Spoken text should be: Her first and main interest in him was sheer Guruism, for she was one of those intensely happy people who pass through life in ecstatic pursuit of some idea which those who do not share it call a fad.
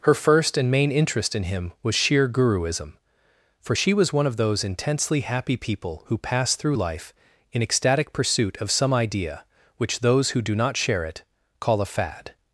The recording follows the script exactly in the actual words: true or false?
true